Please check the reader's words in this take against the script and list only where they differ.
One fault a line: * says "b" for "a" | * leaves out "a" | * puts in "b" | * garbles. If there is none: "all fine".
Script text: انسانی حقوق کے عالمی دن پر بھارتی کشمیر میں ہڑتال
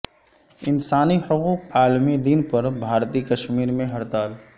* leaves out "کے"